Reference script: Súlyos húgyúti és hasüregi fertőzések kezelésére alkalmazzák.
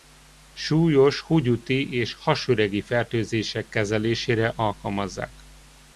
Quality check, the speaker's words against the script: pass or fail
pass